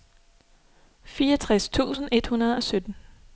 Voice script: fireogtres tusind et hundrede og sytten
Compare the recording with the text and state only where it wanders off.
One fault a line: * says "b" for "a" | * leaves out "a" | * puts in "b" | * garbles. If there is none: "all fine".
all fine